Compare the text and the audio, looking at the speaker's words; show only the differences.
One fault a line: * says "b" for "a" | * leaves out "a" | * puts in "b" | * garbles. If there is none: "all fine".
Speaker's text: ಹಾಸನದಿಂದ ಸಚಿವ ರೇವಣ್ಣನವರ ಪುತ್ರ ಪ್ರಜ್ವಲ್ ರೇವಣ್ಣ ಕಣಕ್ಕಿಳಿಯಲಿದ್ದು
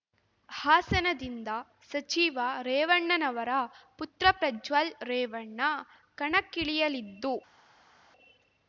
all fine